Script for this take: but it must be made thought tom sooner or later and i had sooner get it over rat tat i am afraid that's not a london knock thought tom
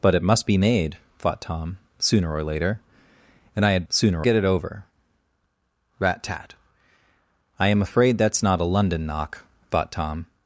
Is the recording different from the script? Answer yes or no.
no